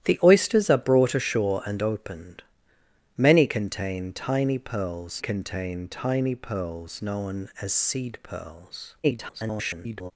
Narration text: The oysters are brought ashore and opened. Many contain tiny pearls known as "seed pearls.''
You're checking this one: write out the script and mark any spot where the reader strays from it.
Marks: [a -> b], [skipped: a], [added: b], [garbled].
The oysters are brought ashore and opened. Many contain tiny pearls [added: contain tiny pearls] known as "seed pearls.'' [garbled]